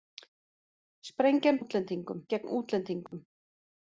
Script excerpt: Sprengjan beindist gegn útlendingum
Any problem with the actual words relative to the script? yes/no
yes